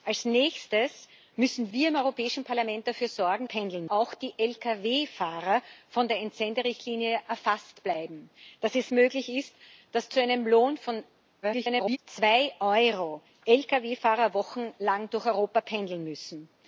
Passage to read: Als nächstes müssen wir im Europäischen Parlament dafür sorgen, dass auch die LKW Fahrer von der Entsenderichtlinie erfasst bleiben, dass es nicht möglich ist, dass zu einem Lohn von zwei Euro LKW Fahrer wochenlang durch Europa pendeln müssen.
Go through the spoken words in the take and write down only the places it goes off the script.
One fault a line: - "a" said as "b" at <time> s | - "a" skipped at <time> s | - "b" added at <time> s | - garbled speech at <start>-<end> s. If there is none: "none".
- "dass" said as "pendeln" at 3.4 s
- "nicht" skipped at 8.9 s
- garbled speech at 11.4-12.0 s